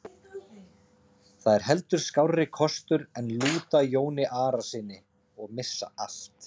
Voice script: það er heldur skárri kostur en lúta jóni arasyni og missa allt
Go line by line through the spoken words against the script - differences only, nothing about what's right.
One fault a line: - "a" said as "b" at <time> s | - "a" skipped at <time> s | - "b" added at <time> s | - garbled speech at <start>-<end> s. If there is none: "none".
none